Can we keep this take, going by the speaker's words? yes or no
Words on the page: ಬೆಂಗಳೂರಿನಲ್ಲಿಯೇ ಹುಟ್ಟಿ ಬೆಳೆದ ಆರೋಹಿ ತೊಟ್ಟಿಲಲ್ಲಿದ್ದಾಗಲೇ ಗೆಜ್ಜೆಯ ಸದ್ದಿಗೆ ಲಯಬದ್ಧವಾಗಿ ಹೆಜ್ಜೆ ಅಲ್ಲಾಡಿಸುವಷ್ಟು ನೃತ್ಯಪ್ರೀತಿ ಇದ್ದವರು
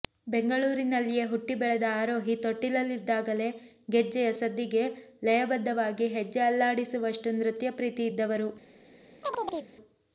yes